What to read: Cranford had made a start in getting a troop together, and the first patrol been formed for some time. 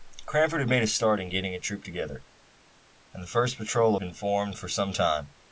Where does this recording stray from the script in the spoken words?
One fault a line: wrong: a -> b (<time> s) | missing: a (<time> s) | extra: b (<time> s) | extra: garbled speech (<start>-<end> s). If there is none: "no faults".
no faults